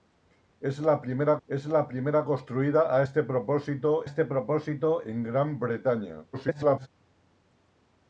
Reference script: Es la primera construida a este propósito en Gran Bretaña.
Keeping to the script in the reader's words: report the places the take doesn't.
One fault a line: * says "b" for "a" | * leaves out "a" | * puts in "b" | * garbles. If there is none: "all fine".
* puts in "es la primera"
* puts in "este propósito"
* garbles